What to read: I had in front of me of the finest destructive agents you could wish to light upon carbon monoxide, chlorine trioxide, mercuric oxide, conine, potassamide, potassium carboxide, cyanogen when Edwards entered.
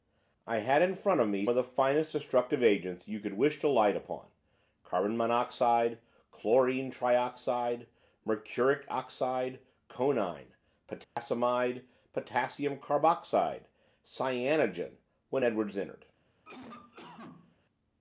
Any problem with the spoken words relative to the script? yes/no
no